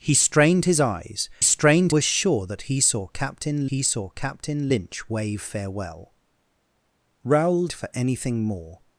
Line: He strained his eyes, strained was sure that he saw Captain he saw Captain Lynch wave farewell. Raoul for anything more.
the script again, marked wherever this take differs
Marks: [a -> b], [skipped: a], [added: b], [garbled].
He strained his eyes, strained was sure that he saw Captain he saw Captain Lynch wave farewell. Raoul for anything more.